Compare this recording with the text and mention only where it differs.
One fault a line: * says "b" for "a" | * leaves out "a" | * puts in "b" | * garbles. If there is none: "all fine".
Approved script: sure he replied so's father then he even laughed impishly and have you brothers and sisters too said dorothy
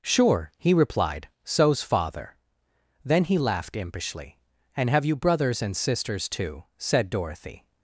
* leaves out "even"